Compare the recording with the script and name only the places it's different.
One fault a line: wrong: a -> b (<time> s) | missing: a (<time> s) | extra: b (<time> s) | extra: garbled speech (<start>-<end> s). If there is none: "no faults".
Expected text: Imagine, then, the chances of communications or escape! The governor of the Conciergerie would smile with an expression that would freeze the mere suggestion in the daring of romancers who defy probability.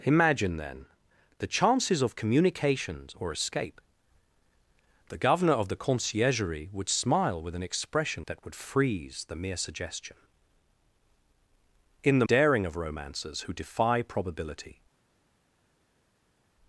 no faults